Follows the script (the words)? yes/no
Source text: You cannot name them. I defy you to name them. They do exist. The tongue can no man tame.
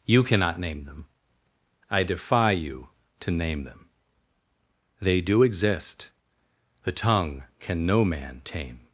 yes